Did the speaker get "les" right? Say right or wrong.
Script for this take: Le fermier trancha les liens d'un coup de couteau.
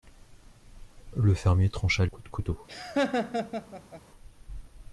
wrong